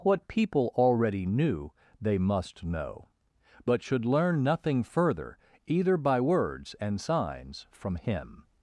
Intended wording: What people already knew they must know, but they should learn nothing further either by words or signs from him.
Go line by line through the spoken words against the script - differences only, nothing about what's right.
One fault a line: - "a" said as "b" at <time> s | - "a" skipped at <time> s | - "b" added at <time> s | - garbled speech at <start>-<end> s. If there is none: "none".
- "they" skipped at 3.8 s
- "or" said as "and" at 6.8 s